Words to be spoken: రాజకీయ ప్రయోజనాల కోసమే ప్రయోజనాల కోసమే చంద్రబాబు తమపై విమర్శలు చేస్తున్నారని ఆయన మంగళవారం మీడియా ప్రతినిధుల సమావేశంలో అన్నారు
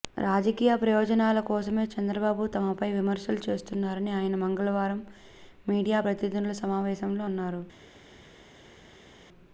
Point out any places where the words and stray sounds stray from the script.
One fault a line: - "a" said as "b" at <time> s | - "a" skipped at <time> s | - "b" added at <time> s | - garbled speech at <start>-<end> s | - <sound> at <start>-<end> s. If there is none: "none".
- "ప్రయోజనాల కోసమే" skipped at 1.8 s